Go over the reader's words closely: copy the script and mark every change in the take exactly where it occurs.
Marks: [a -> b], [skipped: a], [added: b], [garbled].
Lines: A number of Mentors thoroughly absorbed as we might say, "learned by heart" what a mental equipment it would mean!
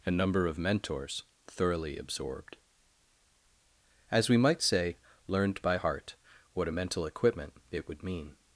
A number of Mentors thoroughly absorbed as we might say, "learned by heart" what a mental equipment it would mean!